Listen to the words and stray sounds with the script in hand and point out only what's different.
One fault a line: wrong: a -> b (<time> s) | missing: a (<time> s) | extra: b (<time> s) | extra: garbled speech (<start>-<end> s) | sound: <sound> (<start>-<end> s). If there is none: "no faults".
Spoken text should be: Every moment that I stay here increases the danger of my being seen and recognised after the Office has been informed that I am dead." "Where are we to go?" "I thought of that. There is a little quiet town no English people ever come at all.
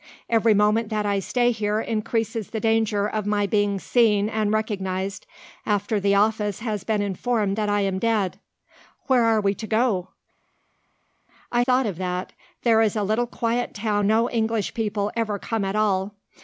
no faults